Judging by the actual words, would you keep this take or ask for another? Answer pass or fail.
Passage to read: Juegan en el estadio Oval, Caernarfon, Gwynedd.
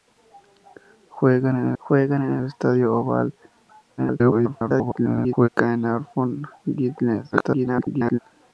fail